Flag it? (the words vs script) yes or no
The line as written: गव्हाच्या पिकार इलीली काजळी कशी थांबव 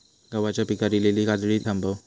yes